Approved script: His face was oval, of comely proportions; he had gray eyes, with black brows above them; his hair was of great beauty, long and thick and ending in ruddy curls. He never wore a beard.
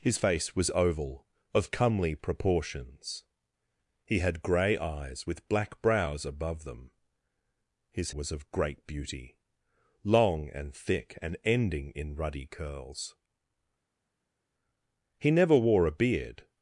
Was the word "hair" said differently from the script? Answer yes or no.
yes